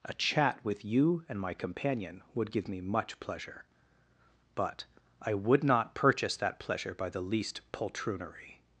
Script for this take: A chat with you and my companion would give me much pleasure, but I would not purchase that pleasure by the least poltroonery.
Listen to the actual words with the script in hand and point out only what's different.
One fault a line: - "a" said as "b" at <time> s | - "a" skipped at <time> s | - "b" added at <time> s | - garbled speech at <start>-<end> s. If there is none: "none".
none